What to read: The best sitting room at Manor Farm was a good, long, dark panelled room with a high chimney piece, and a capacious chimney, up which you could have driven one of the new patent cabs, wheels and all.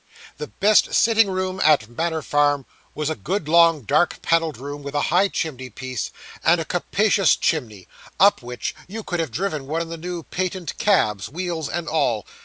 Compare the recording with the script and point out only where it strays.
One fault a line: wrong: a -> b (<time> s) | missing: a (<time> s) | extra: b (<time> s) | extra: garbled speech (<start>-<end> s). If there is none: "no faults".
no faults